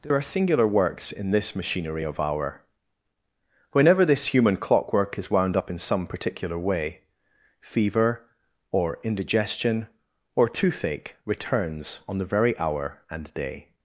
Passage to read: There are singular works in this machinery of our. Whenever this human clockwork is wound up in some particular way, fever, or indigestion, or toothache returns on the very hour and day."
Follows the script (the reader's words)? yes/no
yes